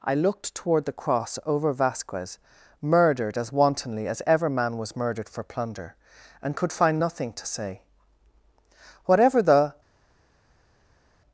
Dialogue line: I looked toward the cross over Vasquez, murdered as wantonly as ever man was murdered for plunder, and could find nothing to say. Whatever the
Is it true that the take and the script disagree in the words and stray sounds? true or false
false